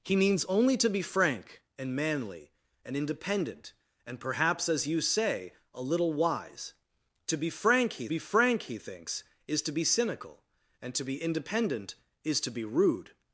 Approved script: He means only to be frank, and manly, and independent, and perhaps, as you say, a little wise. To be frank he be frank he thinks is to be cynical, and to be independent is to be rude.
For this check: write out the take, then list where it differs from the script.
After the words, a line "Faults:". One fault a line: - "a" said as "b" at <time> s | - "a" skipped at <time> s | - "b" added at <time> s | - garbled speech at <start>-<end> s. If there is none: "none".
He means only to be frank, and manly, and independent, and perhaps, as you say, a little wise. To be frank he be frank he thinks is to be cynical, and to be independent is to be rude.
Faults:
none